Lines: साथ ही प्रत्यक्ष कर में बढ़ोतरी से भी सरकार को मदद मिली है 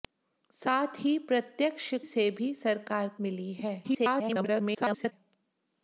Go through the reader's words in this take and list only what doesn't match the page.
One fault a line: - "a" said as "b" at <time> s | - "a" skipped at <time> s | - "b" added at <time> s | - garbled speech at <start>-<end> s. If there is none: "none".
- "कर में बढ़ोतरी" skipped at 1.9 s
- "को मदद" skipped at 3.1 s
- garbled speech at 3.8-5.1 s